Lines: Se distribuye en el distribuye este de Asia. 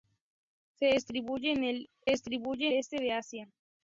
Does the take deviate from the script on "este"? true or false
false